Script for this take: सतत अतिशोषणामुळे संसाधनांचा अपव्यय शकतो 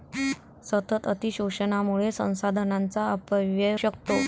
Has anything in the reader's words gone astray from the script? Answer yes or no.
no